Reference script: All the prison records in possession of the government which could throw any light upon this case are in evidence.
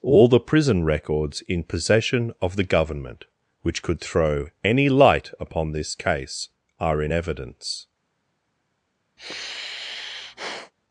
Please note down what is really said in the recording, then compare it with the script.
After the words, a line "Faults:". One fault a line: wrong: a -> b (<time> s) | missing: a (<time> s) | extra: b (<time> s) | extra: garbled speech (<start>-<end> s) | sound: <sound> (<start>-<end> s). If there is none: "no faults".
All the prison records in possession of the government which could throw any light upon this case are in evidence.
Faults:
sound: sigh (9.2-10.7 s)